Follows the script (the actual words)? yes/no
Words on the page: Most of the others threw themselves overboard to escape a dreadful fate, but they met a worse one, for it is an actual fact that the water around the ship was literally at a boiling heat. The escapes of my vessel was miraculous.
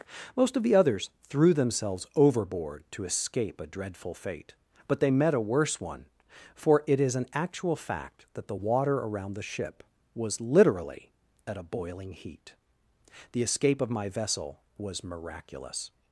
no